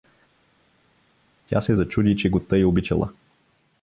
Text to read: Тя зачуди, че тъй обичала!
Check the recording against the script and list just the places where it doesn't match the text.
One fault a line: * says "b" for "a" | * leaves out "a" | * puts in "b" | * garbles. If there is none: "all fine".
* puts in "се"
* puts in "го"